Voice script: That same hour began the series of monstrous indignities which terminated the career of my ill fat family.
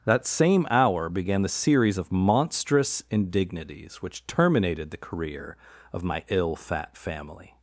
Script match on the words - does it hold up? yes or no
yes